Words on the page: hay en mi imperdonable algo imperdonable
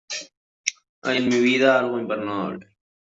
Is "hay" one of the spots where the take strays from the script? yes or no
no